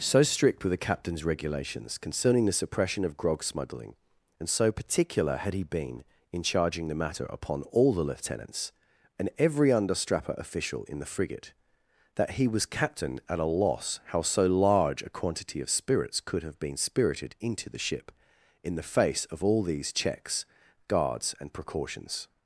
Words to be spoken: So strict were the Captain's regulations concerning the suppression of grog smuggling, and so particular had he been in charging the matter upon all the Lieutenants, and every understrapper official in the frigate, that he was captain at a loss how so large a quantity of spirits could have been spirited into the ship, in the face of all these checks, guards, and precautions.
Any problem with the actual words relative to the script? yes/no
no